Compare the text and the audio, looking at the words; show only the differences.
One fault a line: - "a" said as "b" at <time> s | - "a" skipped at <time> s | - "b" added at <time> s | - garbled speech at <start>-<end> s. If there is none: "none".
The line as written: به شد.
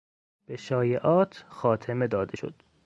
- "شایعات خاتمه داده" added at 0.6 s